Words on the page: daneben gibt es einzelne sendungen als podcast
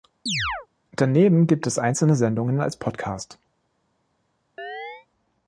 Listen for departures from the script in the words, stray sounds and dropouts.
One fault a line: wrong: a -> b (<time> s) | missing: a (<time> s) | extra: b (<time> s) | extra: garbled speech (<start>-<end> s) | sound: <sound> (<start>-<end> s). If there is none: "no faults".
sound: chirp (0.3-0.7 s)
sound: chirp (4.6-5.1 s)